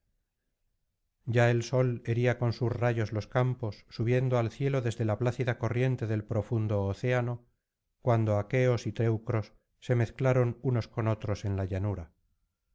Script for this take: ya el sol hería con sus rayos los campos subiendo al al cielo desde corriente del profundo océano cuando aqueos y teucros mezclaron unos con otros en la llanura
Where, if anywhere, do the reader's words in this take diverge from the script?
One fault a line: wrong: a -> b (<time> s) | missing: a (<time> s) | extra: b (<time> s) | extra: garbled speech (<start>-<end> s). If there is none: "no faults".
missing: al (4.5 s)
extra: la plácida (5.0 s)
extra: se (9.8 s)